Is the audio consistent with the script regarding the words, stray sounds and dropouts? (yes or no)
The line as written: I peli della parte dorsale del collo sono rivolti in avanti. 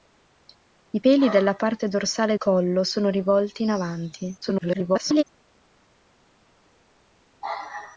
no